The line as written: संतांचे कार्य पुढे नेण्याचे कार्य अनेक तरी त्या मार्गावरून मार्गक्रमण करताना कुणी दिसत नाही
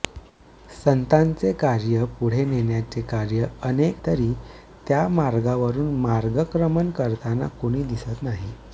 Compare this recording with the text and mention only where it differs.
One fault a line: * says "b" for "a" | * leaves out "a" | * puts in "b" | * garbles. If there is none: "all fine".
all fine